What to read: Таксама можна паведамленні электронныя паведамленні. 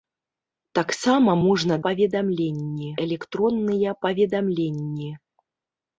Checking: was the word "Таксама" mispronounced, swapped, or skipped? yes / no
no